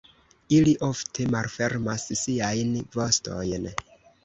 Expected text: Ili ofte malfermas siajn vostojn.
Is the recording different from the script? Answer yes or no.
no